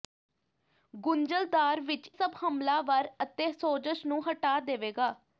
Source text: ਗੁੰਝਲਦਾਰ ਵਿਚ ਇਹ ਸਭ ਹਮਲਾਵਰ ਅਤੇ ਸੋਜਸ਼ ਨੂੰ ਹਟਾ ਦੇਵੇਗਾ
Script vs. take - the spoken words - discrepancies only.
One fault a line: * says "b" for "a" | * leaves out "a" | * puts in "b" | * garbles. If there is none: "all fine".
* leaves out "ਇਹ"